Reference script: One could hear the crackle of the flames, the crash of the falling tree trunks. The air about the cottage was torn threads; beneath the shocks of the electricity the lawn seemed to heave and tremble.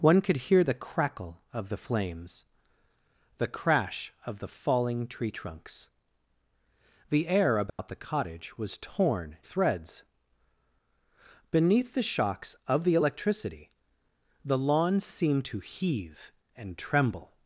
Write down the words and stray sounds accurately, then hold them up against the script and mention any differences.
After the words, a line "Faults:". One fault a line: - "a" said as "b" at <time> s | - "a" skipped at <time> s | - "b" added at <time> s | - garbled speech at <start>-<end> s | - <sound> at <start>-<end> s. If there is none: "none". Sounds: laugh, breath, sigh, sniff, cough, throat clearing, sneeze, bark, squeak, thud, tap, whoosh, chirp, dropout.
One could hear the crackle of the flames, the crash of the falling tree trunks. The air about the cottage was torn threads; beneath the shocks of the electricity the lawn seemed to heave and tremble.
Faults:
- dropout at 7.7-7.8 s